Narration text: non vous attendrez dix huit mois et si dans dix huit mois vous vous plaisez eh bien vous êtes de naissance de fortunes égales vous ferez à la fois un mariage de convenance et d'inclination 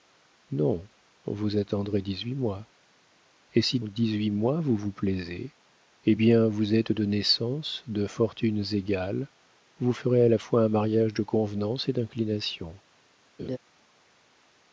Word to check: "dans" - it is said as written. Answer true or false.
false